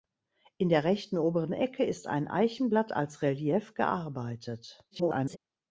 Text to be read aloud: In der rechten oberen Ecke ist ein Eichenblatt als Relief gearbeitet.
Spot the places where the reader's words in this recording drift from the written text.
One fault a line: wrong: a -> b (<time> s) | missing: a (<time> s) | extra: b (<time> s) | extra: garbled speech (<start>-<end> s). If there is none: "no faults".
extra: garbled speech (4.9-5.4 s)